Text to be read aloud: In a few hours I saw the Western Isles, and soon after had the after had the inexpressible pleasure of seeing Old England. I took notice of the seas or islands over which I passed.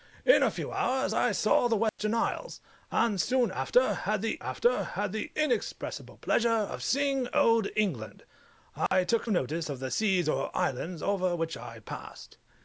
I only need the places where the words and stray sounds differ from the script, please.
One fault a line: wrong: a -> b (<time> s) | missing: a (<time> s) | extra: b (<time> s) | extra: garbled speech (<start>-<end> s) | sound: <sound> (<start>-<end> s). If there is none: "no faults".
sound: dropout (1.9-2.0 s)
sound: dropout (8.9-8.9 s)